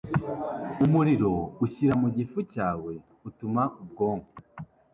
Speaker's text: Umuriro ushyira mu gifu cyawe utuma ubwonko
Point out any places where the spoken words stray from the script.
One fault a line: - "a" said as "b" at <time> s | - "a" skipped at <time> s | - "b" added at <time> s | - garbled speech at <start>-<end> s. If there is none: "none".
none